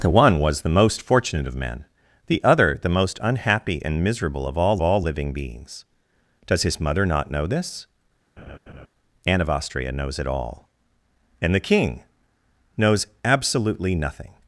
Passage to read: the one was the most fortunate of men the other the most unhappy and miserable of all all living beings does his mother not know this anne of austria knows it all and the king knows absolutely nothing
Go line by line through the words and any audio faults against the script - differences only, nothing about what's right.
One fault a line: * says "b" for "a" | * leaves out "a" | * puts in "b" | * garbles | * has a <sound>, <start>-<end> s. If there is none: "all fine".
* has a laugh, 8.4-8.9 s